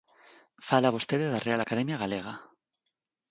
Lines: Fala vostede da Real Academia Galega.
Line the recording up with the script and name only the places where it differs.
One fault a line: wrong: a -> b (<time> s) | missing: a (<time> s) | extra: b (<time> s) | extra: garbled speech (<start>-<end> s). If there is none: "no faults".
no faults